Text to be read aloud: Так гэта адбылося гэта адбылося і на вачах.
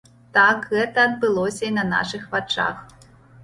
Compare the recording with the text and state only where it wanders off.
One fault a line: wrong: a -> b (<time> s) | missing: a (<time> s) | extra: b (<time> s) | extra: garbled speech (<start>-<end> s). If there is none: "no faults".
missing: гэта адбылося (1.6 s)
extra: нашых (1.9 s)